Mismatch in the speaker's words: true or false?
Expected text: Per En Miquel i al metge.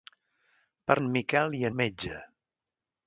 false